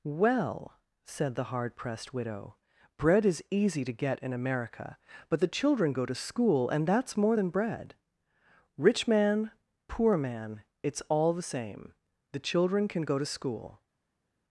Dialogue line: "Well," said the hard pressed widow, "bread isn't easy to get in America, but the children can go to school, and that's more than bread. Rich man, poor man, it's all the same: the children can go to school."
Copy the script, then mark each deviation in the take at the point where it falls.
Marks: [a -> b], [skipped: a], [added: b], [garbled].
"Well," said the hard pressed widow, "bread [isn't -> is] easy to get in America, but the children [skipped: can] go to school, and that's more than bread. Rich man, poor man, it's all the same: the children can go to school."